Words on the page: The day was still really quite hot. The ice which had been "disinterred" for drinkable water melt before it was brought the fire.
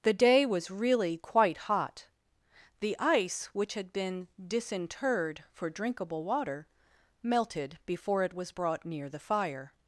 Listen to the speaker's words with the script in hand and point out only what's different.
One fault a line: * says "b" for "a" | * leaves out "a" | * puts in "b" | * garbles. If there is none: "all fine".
* leaves out "still"
* says "melted" for "melt"
* puts in "near"